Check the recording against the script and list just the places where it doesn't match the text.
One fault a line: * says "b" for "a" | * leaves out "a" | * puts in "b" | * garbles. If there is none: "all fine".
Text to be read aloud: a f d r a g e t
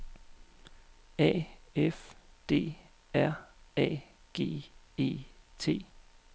all fine